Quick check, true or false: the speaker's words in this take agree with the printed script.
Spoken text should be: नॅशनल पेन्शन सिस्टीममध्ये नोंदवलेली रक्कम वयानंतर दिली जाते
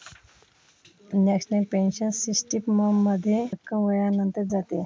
false